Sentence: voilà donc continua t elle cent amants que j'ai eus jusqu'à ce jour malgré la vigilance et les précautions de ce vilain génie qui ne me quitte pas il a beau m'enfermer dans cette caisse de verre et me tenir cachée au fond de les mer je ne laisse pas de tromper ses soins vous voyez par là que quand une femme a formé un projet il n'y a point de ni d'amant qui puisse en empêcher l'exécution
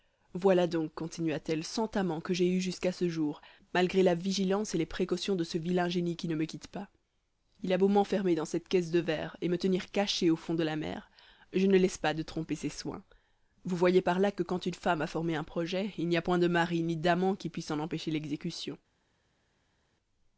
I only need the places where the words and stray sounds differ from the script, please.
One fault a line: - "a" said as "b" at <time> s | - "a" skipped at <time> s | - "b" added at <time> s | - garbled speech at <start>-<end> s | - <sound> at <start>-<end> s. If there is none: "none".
- "les" said as "la" at 10.6 s
- "mari" added at 16.5 s